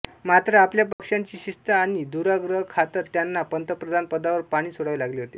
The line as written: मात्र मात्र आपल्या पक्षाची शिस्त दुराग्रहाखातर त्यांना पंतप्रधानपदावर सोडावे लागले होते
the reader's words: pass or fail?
fail